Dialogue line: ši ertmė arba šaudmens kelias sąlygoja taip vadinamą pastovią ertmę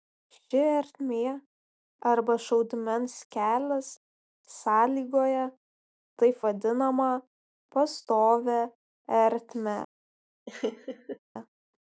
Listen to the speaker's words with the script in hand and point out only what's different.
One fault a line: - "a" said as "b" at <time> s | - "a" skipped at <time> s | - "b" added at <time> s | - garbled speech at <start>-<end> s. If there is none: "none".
none